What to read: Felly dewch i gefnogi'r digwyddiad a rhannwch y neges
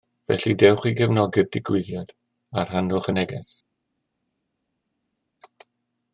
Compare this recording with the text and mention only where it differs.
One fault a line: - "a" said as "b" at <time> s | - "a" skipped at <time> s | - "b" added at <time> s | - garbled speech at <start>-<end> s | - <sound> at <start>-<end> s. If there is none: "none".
none